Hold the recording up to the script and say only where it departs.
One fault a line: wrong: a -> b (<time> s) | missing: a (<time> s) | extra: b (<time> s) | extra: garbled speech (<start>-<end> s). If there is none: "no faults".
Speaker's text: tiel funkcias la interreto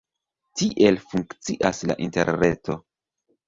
no faults